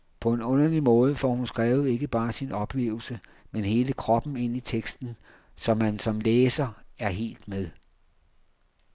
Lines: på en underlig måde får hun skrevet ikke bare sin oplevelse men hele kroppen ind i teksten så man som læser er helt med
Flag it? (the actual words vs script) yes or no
no